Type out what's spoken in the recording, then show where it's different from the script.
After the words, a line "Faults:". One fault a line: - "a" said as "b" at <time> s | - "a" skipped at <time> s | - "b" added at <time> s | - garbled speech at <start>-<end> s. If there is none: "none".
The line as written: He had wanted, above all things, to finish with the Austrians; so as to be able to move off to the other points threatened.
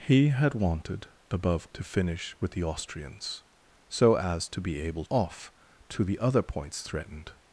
He had wanted, above to finish with the Austrians; so as to be able off to the other points threatened.
Faults:
- "all things" skipped at 1.7 s
- "to move" skipped at 5.0 s